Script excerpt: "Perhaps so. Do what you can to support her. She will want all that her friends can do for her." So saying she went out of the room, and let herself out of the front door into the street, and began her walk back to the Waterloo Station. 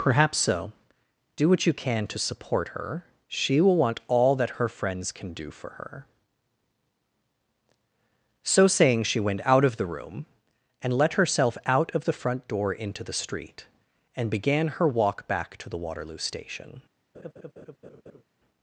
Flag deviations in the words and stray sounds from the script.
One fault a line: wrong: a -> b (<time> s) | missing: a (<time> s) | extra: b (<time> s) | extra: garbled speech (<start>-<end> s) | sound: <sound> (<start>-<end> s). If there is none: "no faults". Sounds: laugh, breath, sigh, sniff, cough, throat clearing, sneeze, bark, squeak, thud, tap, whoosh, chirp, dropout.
sound: laugh (17.1-18.2 s)